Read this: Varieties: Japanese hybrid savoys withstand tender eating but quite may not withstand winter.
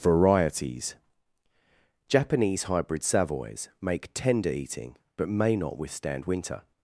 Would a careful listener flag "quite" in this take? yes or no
yes